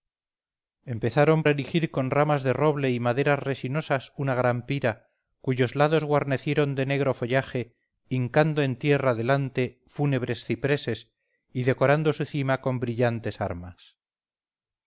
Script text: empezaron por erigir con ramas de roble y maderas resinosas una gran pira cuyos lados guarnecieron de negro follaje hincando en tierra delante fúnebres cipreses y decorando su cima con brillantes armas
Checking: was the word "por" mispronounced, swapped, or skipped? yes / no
yes